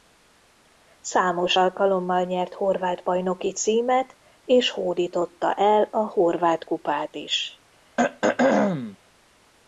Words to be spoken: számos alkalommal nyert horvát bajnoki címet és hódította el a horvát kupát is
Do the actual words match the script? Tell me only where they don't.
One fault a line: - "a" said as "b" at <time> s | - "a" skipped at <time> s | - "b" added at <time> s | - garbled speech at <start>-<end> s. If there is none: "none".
none